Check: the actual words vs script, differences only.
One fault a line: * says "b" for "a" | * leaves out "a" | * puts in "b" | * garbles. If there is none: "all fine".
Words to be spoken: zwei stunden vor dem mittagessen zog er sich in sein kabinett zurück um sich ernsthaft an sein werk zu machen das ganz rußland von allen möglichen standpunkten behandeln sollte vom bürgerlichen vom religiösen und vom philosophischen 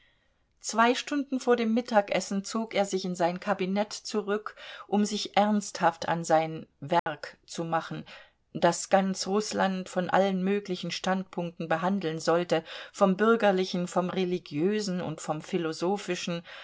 all fine